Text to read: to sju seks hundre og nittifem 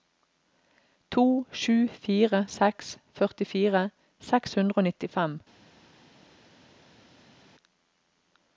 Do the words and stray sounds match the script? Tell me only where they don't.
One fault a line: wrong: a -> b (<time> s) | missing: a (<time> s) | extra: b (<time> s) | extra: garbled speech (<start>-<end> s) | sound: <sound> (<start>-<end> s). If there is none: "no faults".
extra: fire seks førtifire (2.0 s)